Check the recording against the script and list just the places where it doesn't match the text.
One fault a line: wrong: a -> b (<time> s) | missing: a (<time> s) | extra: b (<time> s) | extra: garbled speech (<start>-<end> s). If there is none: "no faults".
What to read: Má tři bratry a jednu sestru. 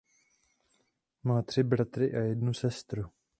no faults